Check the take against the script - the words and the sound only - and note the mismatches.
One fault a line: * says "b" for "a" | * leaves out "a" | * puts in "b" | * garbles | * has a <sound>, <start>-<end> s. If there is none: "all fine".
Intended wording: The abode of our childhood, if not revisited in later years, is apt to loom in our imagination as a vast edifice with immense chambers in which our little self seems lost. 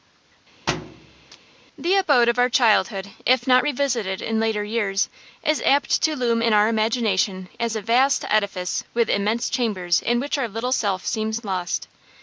* has a thud, 0.7-1.4 s